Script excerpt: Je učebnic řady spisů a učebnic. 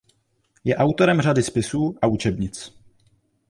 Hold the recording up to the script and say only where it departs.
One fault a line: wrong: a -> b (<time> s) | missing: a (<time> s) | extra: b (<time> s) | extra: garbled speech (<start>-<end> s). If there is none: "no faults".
wrong: učebnic -> autorem (0.8 s)